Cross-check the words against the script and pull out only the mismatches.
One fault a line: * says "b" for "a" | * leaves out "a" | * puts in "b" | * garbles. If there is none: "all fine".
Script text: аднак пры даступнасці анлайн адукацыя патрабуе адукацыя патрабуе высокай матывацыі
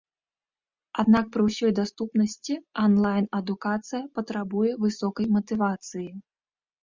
* puts in "ўсёй"
* leaves out "адукацыя патрабуе"